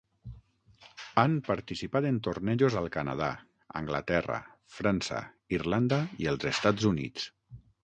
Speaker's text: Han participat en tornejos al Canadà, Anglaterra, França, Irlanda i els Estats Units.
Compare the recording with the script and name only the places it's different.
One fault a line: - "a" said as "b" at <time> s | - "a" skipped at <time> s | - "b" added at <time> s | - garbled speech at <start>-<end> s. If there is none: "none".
none